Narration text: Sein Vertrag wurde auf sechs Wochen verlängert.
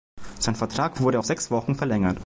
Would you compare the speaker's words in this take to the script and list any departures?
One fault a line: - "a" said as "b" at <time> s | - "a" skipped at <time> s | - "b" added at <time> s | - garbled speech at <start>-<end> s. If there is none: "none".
none